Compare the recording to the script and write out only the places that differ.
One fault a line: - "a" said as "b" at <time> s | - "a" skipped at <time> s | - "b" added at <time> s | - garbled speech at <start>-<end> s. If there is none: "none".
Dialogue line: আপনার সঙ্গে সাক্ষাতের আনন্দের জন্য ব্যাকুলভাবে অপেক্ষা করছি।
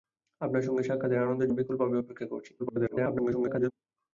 - "জন্য" skipped at 1.5 s
- garbled speech at 2.6-3.7 s